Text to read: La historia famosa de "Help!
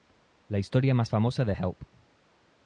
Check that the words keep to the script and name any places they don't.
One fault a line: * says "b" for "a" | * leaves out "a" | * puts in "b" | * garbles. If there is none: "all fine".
* puts in "más"